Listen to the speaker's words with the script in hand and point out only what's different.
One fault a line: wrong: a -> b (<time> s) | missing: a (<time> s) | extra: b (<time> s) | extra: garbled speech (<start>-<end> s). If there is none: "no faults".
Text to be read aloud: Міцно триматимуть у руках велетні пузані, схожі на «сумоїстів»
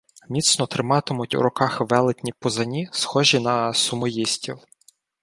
no faults